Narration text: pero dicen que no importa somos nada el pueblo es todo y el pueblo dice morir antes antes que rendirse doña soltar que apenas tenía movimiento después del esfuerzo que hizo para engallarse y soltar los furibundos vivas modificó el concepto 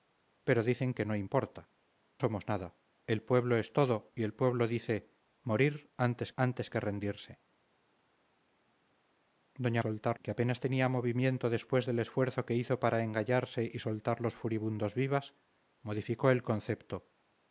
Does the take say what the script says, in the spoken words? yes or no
yes